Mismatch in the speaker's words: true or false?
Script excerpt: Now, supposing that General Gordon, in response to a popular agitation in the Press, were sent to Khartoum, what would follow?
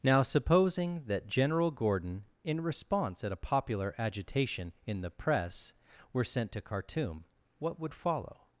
true